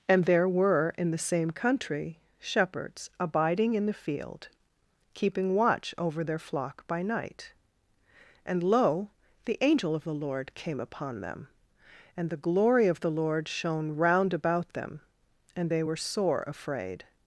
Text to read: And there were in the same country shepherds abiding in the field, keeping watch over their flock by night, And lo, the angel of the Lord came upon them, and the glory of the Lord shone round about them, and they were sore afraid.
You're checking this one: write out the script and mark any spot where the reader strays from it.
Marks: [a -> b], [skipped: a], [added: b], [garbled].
And there were in the same country shepherds abiding in the field, keeping watch over their flock by night, And lo, the angel of the Lord came upon them, and the glory of the Lord shone round about them, and they were sore afraid.